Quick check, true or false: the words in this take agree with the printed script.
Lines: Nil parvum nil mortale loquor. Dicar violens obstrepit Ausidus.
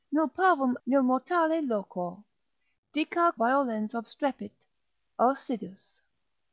true